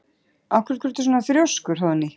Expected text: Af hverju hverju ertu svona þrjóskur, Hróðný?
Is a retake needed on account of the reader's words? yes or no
no